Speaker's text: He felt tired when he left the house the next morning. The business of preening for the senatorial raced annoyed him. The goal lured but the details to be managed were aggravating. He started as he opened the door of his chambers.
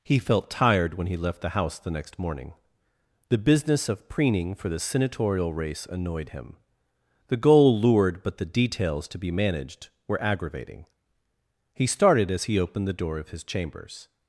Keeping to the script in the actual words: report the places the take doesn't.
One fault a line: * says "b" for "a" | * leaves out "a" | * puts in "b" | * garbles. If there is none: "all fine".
* says "race" for "raced"